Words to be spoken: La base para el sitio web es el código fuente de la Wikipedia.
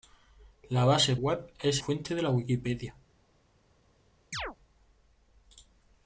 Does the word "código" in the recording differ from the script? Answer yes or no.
yes